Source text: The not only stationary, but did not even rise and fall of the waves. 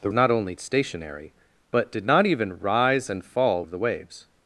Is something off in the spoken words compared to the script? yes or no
no